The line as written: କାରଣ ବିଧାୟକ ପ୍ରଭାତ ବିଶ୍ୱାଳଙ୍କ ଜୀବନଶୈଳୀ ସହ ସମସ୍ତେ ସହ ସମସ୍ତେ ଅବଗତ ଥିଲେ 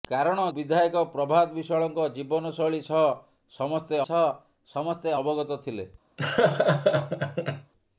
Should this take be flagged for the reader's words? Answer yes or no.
no